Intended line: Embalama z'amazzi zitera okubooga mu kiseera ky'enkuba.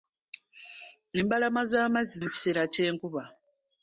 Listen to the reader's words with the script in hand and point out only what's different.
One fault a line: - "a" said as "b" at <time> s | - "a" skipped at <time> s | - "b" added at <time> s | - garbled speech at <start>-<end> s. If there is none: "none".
- "zitera okubooga" skipped at 2.2 s